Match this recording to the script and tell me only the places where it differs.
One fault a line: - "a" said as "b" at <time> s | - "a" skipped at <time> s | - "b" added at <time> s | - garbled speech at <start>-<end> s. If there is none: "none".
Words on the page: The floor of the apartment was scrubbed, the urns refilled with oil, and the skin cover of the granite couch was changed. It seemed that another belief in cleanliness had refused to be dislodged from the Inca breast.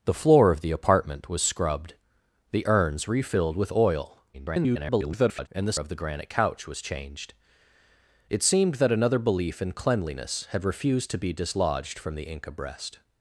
- garbled speech at 4.3-5.5 s
- "skin cover" skipped at 5.8 s